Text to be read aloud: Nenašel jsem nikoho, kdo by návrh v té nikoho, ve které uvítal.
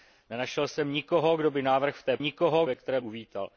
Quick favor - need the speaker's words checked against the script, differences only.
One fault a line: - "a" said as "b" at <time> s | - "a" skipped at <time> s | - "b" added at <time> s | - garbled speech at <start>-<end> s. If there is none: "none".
none